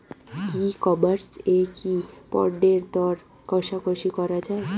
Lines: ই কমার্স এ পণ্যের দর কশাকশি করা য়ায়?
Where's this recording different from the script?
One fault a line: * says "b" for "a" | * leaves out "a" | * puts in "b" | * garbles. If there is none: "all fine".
* puts in "কি"